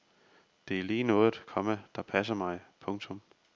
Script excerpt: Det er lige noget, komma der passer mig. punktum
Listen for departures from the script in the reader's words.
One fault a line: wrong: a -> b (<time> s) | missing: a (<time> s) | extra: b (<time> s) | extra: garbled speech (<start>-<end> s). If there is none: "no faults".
no faults